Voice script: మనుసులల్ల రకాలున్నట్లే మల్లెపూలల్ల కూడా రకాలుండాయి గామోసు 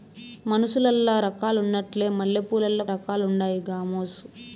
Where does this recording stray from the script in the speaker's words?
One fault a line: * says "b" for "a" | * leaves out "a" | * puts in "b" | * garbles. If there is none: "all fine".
* leaves out "కూడా"